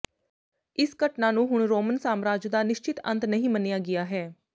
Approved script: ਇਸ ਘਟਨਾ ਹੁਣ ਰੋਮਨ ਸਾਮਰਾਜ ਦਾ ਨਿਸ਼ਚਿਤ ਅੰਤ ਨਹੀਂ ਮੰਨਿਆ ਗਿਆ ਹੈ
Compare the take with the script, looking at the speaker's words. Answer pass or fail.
fail